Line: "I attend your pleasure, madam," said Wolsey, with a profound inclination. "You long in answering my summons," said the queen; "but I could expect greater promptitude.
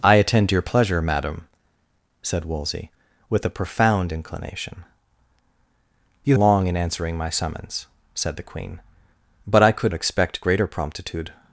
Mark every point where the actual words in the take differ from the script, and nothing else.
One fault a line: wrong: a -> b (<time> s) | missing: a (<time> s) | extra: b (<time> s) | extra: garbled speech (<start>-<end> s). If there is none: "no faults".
no faults